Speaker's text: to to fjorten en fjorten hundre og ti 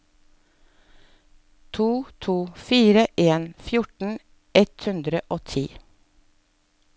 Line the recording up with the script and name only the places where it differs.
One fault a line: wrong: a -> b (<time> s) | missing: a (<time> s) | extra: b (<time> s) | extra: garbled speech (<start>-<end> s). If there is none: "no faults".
wrong: fjorten -> fire (2.5 s)
extra: ett (4.5 s)